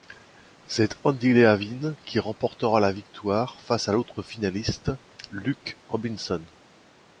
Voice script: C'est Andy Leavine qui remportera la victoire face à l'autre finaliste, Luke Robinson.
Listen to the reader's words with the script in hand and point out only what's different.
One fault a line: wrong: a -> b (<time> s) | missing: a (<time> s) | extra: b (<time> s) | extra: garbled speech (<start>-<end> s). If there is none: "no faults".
no faults